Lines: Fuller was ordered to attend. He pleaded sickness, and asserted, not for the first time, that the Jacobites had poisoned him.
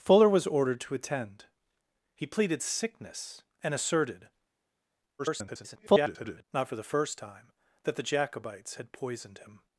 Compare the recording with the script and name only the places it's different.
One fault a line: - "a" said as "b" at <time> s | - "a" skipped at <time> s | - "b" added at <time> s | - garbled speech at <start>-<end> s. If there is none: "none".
- garbled speech at 5.2-6.4 s